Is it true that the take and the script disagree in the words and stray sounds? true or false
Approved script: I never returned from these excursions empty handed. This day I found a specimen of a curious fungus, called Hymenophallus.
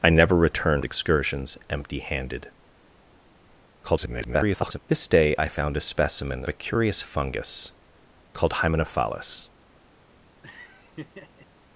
true